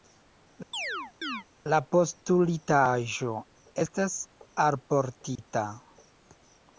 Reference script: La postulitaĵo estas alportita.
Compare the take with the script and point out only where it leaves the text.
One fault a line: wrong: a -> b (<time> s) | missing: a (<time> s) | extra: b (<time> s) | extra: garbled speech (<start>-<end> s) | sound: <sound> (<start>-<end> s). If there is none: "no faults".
sound: chirp (0.7-1.4 s)
sound: dropout (5.4-5.4 s)